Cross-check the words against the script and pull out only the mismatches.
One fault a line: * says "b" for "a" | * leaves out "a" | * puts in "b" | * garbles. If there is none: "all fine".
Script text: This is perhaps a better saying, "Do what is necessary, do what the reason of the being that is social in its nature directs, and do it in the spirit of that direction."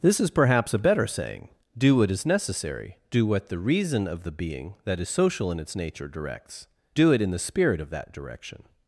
* leaves out "and"